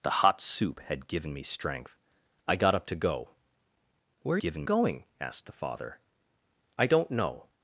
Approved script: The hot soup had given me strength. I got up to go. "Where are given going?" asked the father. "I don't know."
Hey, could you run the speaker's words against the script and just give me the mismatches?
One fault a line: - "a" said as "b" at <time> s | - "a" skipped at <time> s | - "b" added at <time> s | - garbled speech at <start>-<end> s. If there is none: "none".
none